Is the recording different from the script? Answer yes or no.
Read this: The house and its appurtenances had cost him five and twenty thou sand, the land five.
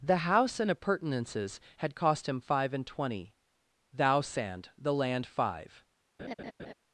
yes